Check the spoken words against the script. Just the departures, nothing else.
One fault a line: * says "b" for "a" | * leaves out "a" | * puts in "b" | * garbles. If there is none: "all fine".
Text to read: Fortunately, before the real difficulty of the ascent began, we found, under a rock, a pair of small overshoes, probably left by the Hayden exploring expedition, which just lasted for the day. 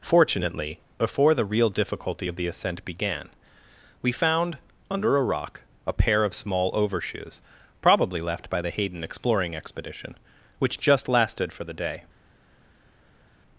all fine